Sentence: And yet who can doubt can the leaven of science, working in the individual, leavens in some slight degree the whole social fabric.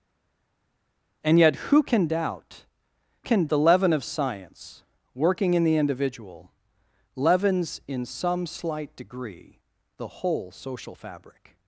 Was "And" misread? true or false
false